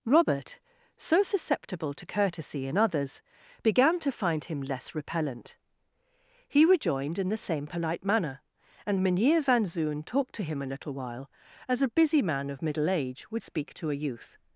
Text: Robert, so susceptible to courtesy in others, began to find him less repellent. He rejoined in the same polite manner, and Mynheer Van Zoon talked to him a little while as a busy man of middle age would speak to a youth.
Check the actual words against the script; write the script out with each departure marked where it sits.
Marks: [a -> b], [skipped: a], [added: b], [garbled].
Robert, so susceptible to courtesy in others, began to find him less repellent. He rejoined in the same polite manner, and Mynheer Van Zoon talked to him a little while as a busy man of middle age would speak to a youth.